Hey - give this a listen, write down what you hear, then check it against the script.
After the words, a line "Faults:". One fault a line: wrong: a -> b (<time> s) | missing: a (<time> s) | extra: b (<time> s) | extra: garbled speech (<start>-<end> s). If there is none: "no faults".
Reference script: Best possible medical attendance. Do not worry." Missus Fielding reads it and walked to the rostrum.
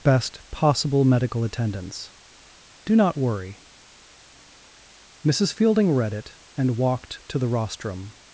Best possible medical attendance. Do not worry." Missus Fielding read it and walked to the rostrum.
Faults:
wrong: reads -> read (5.9 s)